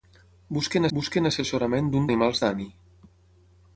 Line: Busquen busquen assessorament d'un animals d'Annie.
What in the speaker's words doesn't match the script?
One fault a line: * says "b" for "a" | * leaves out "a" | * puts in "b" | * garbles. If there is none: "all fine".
all fine